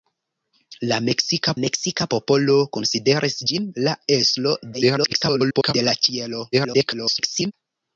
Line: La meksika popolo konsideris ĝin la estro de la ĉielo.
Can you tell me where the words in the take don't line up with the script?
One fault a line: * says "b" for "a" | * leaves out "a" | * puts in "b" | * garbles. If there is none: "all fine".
* puts in "meksika"
* garbles
* garbles